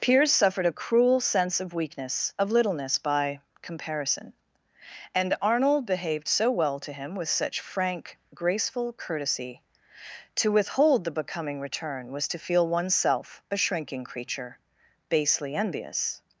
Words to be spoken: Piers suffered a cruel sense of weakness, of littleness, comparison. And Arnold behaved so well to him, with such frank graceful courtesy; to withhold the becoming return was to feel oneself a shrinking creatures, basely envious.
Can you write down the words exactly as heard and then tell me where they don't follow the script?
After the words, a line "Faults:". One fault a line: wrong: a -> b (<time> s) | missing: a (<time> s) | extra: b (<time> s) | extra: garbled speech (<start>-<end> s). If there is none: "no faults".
Piers suffered a cruel sense of weakness, of littleness, by comparison. And Arnold behaved so well to him, with such frank graceful courtesy; to withhold the becoming return was to feel oneself a shrinking creature, basely envious.
Faults:
extra: by (3.0 s)
wrong: creatures -> creature (14.0 s)